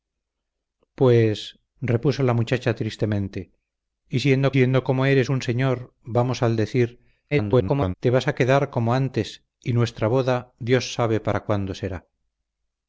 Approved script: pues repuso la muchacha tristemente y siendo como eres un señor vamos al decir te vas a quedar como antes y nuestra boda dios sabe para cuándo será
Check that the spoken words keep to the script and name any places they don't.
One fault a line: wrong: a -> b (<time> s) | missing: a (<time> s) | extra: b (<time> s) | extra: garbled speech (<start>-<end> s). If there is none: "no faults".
extra: siendo (4.5 s)
extra: garbled speech (7.3-7.9 s)